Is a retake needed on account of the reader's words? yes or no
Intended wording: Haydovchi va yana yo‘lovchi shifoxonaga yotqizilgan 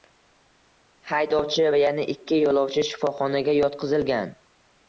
yes